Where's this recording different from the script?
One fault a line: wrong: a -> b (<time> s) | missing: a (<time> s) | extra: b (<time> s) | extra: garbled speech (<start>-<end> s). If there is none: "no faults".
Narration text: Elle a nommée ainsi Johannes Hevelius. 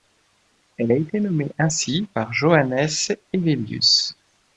extra: été (0.9 s)
extra: par (2.1 s)